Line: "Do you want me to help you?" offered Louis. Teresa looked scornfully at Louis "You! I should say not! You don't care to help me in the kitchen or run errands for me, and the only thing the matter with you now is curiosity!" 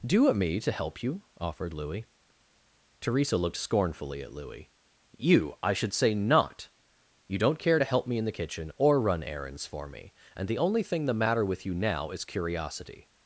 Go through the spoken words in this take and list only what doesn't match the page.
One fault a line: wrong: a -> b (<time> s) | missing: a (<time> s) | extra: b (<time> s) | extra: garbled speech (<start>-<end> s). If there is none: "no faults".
no faults